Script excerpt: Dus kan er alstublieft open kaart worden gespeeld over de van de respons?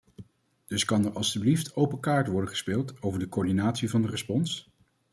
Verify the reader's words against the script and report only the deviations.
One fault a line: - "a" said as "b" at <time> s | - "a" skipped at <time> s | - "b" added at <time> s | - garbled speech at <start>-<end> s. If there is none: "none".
- "coördinatie" added at 3.3 s